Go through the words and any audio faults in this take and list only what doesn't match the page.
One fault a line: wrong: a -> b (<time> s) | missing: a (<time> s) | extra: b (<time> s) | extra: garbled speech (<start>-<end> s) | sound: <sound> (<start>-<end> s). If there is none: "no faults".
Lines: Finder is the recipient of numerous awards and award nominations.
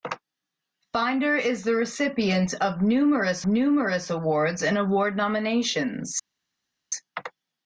extra: numerous (3.5 s)